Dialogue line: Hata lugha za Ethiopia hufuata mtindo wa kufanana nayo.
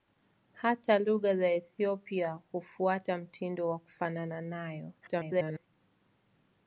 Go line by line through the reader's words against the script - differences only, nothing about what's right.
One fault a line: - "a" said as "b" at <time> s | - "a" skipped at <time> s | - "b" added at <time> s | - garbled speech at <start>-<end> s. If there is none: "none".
- garbled speech at 5.0-5.7 s